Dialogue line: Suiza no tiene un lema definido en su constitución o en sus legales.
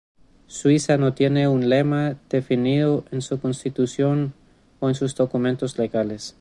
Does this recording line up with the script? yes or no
no